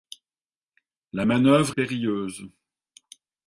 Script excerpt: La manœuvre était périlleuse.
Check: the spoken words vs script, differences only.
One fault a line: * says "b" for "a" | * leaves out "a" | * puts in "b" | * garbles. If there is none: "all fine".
* leaves out "était"